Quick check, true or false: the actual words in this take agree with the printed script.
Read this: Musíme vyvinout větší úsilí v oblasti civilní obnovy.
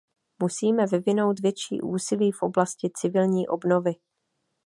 true